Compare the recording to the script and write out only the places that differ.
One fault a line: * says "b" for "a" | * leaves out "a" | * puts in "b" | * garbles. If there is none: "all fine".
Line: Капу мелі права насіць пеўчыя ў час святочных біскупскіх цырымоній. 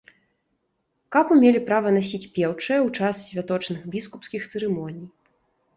all fine